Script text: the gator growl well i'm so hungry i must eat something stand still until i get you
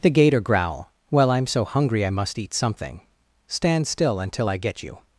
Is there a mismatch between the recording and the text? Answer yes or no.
no